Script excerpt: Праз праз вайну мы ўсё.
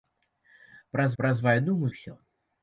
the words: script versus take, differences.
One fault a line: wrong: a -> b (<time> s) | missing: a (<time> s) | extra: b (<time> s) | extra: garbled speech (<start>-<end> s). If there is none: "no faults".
no faults